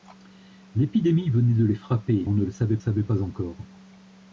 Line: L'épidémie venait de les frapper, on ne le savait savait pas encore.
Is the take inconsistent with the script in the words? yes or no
no